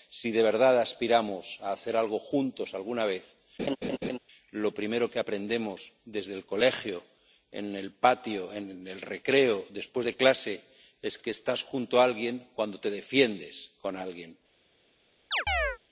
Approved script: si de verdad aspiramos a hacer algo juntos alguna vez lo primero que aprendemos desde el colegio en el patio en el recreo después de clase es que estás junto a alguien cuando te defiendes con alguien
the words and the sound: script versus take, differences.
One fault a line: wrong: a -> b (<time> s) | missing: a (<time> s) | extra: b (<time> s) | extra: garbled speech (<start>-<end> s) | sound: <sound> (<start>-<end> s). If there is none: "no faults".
sound: laugh (3.6-4.2 s)
sound: chirp (15.3-15.8 s)